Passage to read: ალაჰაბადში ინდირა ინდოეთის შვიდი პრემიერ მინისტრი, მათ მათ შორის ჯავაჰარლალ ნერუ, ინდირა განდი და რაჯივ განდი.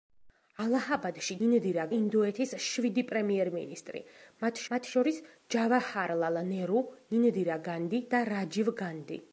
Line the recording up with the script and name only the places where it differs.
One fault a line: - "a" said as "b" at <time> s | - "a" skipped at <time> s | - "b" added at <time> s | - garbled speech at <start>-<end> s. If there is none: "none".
none